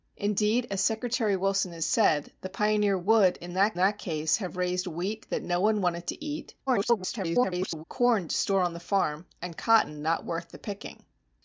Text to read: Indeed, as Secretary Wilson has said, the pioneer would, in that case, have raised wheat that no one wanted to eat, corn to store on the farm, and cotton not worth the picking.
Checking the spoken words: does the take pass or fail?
fail